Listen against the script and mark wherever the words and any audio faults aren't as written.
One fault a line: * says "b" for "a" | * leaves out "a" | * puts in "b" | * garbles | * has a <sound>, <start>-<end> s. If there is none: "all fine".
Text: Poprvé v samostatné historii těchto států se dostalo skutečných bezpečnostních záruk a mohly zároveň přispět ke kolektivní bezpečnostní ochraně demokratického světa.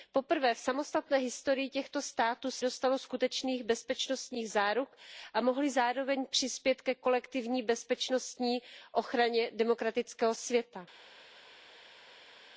all fine